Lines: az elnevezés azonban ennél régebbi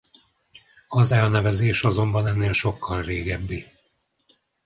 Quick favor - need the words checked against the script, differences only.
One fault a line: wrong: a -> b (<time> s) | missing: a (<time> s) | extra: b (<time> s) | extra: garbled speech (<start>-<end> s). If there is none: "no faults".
extra: sokkal (2.5 s)